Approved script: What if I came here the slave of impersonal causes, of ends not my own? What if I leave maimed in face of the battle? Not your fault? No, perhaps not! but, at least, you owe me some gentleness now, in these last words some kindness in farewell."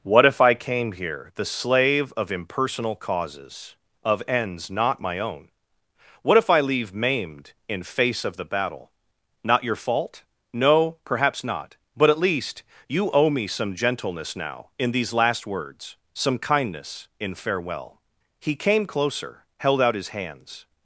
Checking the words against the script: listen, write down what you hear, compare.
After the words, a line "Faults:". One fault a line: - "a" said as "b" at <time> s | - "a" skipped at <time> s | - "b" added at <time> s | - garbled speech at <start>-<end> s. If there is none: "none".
What if I came here the slave of impersonal causes, of ends not my own? What if I leave maimed in face of the battle? Not your fault? No, perhaps not! but, at least, you owe me some gentleness now, in these last words some kindness in farewell." He came closer, held out his hands
Faults:
- "He came closer held out his hands" added at 18.4 s